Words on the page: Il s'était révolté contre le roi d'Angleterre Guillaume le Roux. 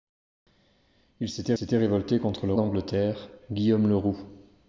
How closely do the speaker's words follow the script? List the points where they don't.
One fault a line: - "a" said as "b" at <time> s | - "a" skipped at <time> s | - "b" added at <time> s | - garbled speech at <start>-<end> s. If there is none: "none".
- "s'était" added at 1.5 s
- "roi" skipped at 2.5 s